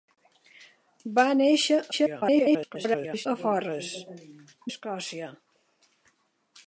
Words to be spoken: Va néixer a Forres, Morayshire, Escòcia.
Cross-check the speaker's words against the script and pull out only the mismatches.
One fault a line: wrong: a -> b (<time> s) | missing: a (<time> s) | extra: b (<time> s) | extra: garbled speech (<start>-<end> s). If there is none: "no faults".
extra: garbled speech (1.9-3.3 s)
missing: Morayshire (3.9 s)